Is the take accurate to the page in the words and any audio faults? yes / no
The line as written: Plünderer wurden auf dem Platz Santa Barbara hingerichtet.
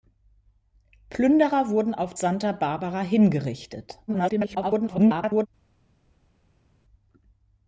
no